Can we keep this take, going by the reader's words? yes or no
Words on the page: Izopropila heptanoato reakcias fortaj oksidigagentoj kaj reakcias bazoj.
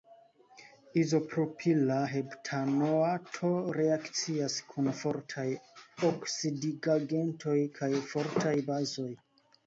no